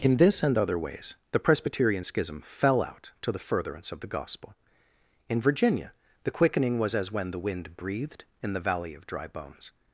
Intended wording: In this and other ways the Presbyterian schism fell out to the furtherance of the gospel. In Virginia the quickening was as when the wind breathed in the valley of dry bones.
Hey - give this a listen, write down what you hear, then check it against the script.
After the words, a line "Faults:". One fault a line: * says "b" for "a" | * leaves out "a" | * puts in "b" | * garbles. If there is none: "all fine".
In this and other ways the Presbyterian schism fell out to the furtherance of the gospel. In Virginia the quickening was as when the wind breathed in the valley of dry bones.
Faults:
all fine